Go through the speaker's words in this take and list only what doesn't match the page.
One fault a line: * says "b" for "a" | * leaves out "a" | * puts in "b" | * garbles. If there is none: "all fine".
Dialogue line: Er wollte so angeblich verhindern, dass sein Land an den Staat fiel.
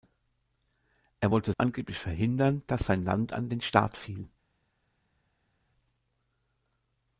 * leaves out "so"